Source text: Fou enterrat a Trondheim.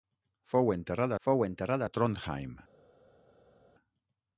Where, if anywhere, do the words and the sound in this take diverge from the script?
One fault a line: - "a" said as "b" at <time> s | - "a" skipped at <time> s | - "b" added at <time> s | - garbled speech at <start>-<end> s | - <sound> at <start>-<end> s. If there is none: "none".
- "fou enterrat" added at 1.2 s